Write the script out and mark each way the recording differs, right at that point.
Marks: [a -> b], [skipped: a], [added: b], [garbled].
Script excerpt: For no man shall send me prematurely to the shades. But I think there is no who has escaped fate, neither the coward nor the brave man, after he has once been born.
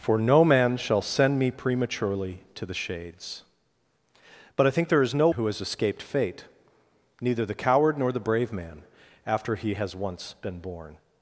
For no man shall send me prematurely to the shades. But I think there is no who has escaped fate, neither the coward nor the brave man, after he has once been born.